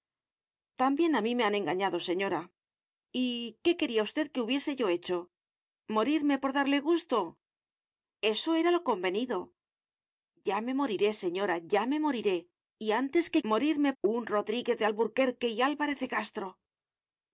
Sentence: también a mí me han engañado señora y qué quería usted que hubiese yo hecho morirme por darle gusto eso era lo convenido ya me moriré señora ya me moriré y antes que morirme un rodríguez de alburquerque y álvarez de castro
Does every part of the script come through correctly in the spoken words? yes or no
yes